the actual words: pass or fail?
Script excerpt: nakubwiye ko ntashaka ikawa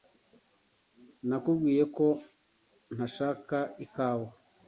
pass